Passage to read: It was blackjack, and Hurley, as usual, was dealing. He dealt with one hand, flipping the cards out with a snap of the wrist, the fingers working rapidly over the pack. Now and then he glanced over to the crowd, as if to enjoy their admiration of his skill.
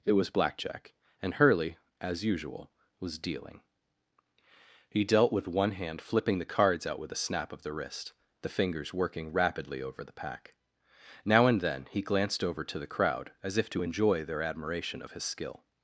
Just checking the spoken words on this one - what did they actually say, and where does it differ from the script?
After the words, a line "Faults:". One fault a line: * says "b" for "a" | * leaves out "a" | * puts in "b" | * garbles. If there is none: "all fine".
It was blackjack, and Hurley, as usual, was dealing. He dealt with one hand, flipping the cards out with a snap of the wrist, the fingers working rapidly over the pack. Now and then he glanced over to the crowd, as if to enjoy their admiration of his skill.
Faults:
all fine